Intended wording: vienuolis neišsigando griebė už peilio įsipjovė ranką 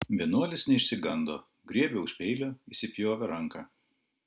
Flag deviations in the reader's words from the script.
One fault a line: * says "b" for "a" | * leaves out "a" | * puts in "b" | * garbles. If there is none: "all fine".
all fine